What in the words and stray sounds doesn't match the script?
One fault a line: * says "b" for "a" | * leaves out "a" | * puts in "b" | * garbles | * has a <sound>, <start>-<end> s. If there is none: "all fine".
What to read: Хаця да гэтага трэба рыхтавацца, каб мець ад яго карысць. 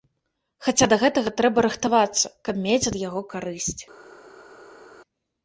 all fine